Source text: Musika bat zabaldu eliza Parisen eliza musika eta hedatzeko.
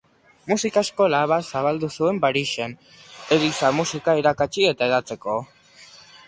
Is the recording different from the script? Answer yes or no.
yes